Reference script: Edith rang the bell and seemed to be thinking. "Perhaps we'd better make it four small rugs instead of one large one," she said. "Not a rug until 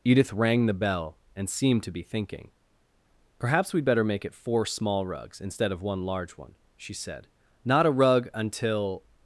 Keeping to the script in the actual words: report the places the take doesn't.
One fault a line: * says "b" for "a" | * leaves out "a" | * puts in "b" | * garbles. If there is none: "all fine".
all fine